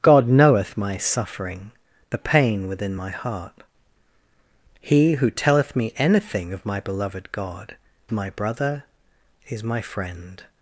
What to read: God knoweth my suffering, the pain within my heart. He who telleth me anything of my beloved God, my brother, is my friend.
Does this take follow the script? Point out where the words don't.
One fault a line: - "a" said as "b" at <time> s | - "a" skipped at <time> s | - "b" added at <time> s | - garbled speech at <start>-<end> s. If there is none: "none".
none